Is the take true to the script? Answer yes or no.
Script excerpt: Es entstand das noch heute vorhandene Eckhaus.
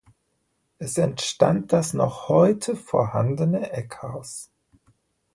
yes